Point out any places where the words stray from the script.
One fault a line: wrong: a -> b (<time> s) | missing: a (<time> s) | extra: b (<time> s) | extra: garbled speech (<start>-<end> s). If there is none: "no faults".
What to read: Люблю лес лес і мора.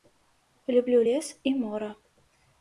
missing: лес (1.4 s)